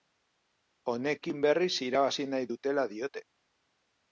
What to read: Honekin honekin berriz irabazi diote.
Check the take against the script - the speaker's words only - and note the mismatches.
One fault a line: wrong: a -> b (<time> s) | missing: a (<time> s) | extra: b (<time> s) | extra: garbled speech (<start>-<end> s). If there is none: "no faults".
missing: honekin (1.4 s)
extra: nahi dutela (2.3 s)